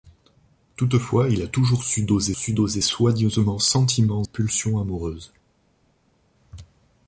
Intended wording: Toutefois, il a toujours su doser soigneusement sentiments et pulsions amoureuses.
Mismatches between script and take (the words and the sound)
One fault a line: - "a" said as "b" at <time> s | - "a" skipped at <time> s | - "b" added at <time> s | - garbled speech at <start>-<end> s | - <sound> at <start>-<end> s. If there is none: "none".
- "su doser" added at 2.3 s
- "et" skipped at 4.2 s